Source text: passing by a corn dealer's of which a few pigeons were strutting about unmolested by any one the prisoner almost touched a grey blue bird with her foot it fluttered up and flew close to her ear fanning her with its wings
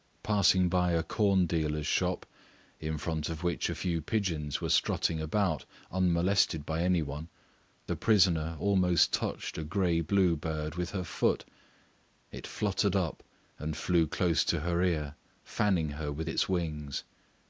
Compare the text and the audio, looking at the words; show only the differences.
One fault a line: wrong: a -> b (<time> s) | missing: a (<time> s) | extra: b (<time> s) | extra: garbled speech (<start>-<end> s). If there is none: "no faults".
extra: shop in front (1.9 s)